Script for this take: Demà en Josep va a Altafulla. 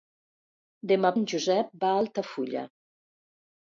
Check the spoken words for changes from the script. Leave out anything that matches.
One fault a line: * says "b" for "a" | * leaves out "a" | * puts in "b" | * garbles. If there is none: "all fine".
all fine